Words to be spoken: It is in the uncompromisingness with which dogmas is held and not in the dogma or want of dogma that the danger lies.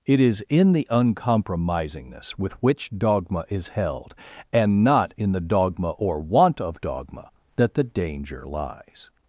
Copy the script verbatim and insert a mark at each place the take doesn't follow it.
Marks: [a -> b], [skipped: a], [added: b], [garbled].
It is in the uncompromisingness with which [dogmas -> dogma] is held and not in the dogma or want of dogma that the danger lies.